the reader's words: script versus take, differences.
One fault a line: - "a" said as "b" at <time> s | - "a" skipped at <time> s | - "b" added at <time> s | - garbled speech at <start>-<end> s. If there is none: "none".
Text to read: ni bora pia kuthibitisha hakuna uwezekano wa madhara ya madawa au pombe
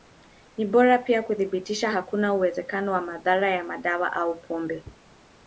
none